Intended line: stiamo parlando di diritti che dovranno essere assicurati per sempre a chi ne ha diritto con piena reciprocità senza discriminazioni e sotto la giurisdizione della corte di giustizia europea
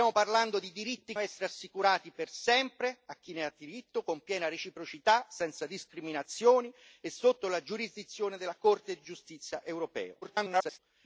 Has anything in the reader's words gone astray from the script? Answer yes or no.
yes